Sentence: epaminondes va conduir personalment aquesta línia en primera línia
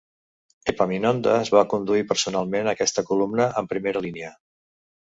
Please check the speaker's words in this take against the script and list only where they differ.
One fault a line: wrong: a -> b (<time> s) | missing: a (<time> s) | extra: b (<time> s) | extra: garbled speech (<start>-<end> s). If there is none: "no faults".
wrong: línia -> columna (3.1 s)